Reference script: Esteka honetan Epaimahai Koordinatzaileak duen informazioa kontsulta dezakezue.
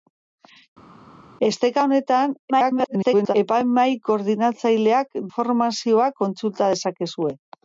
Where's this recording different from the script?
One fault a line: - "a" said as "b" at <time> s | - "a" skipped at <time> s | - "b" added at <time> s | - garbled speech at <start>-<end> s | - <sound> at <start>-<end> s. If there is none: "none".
- garbled speech at 2.5-3.4 s
- "duen" skipped at 5.2 s